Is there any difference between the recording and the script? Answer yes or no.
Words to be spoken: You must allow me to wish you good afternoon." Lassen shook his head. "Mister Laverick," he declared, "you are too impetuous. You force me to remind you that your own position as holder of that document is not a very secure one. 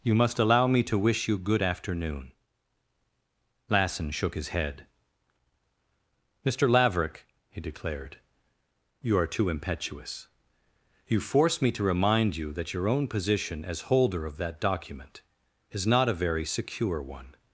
no